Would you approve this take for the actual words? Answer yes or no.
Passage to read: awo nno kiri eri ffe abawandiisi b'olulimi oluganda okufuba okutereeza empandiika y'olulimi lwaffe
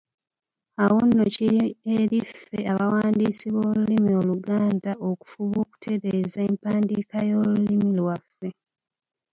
yes